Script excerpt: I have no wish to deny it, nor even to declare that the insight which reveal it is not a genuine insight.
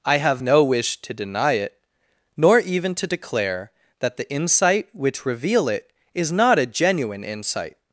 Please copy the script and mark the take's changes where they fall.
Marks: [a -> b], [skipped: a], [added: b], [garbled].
I have no wish to deny it, nor even to declare that the insight which reveal it is not a genuine insight.